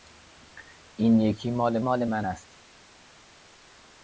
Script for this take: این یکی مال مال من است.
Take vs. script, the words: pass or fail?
pass